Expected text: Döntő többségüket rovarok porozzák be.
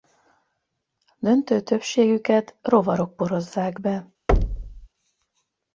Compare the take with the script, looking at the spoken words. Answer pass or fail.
pass